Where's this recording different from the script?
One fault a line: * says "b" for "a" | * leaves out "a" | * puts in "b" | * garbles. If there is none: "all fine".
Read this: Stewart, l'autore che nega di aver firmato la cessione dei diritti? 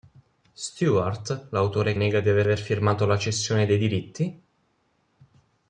* leaves out "che"
* puts in "aver"